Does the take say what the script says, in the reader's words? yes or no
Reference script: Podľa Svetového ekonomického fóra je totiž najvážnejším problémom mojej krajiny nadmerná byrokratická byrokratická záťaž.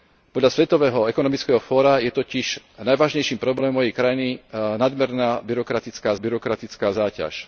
yes